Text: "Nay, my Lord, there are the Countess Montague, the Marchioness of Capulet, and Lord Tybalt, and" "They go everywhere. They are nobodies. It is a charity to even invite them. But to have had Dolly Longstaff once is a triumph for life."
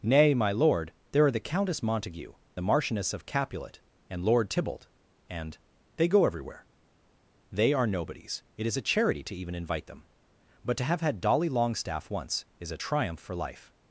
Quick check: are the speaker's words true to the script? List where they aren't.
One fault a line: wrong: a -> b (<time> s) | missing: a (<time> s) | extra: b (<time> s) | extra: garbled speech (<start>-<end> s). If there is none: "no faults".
no faults